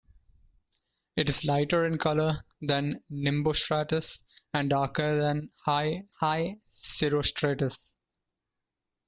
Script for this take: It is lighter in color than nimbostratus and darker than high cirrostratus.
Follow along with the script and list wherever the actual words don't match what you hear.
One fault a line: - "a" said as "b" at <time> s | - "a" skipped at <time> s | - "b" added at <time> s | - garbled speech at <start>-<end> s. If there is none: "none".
- "high" added at 6.2 s